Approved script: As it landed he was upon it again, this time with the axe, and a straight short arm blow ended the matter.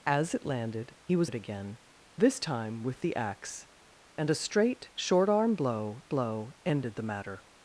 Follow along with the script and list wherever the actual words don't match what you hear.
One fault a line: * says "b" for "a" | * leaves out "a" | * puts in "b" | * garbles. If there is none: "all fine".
* leaves out "upon"
* puts in "blow"